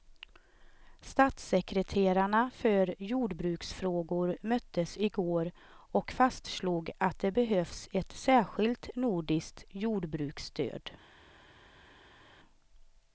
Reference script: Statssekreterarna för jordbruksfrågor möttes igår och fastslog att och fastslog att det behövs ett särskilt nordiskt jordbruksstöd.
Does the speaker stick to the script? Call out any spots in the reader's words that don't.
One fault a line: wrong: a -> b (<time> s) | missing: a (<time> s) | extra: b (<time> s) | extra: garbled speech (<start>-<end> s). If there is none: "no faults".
missing: och fastslog att (7.2 s)